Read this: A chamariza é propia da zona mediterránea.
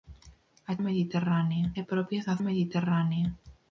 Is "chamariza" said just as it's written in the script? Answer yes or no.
no